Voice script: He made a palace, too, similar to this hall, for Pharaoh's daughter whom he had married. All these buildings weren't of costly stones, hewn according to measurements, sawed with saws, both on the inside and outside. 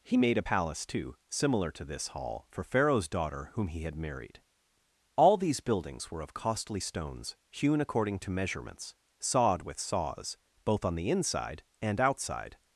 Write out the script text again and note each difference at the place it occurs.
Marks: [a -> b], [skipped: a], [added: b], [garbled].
He made a palace, too, similar to this hall, for Pharaoh's daughter whom he had married. All these buildings [weren't -> were] of costly stones, hewn according to measurements, sawed with saws, both on the inside and outside.